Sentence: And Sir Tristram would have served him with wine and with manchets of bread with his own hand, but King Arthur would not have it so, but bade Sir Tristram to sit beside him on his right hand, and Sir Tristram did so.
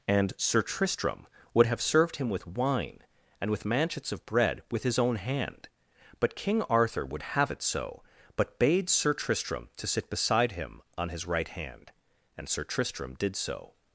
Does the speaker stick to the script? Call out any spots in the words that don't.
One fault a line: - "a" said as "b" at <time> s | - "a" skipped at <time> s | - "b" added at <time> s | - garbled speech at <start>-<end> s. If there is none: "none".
- "not" skipped at 7.2 s